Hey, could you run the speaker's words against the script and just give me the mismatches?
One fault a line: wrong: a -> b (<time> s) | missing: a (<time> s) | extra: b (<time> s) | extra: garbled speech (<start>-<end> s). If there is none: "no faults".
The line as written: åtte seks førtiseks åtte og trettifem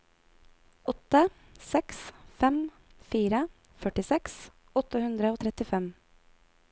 extra: fem fire (2.4 s)
extra: hundre (5.0 s)